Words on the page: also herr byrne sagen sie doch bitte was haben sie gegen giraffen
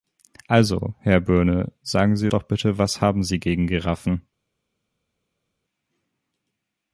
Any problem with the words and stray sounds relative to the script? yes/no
no